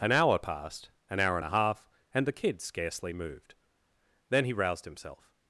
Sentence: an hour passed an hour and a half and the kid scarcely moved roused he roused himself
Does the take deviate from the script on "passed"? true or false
false